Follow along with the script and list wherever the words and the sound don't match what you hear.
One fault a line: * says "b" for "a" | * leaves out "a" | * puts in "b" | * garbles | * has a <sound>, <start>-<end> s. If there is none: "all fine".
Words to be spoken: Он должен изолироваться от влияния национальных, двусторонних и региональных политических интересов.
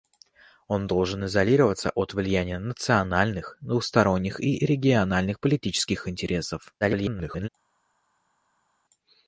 * garbles